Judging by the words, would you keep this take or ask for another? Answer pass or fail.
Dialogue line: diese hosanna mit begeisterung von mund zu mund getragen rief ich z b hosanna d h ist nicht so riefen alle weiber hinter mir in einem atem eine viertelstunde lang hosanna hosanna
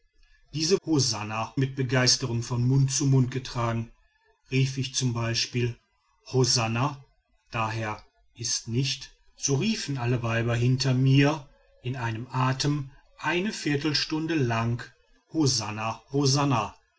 pass